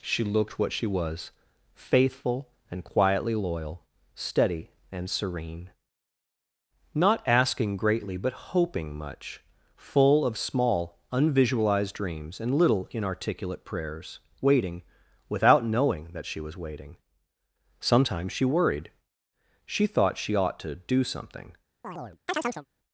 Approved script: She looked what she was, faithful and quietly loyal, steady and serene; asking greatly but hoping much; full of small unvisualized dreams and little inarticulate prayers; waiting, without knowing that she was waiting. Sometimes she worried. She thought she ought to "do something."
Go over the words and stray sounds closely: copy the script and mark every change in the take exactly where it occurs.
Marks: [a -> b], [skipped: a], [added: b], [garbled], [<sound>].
She looked what she was, faithful and quietly loyal, steady and serene; [added: not] asking greatly but hoping much; full of small unvisualized dreams and little inarticulate prayers; waiting, without knowing that she was waiting. Sometimes she worried. She thought she ought to "do something." [chirp]